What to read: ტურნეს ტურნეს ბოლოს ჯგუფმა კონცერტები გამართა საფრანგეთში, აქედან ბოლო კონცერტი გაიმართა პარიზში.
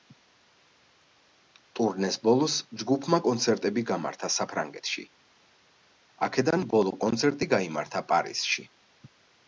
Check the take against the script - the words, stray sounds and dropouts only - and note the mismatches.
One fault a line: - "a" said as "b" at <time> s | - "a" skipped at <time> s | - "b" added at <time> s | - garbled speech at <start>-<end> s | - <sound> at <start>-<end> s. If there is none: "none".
- "ტურნეს" skipped at 2.1 s